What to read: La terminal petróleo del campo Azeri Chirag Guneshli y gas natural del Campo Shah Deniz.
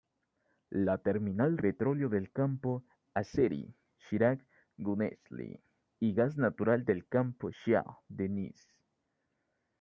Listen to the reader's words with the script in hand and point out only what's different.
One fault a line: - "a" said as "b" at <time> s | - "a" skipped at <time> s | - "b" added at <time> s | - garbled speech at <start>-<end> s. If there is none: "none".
none